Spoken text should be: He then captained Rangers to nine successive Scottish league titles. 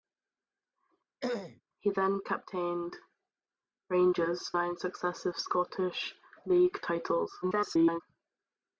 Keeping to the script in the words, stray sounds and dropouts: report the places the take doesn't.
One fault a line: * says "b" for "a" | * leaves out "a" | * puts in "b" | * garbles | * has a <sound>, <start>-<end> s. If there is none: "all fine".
* has a throat clearing, 1.2-1.6 s
* leaves out "to"
* garbles